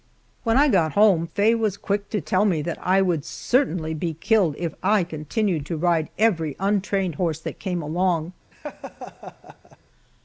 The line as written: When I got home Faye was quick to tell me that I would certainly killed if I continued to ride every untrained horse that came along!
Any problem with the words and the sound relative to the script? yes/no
yes